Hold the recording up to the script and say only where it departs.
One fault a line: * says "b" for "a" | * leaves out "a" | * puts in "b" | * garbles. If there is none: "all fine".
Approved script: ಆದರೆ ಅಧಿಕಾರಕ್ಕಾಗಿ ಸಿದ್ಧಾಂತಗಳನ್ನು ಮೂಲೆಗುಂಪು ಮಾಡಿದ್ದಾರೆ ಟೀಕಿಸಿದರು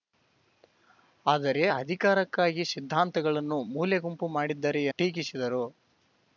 all fine